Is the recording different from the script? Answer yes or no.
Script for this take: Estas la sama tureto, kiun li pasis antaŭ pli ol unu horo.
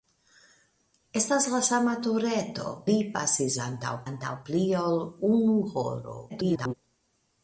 yes